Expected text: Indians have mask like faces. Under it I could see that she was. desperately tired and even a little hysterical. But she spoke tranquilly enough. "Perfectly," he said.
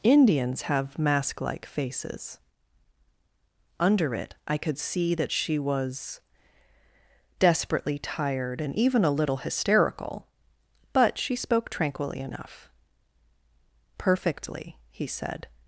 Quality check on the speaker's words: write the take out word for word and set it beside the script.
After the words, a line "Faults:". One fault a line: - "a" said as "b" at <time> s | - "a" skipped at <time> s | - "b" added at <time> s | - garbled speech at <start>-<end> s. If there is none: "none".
Indians have mask like faces. Under it I could see that she was. desperately tired and even a little hysterical. But she spoke tranquilly enough. "Perfectly," he said.
Faults:
none